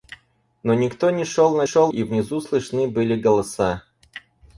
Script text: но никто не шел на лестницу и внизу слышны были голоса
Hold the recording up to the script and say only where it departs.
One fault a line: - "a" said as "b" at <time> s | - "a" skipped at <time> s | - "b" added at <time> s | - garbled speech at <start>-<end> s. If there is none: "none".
- "лестницу" said as "шел" at 1.6 s